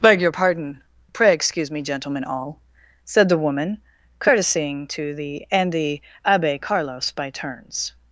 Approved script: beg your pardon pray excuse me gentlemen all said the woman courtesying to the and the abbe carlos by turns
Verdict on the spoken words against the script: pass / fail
pass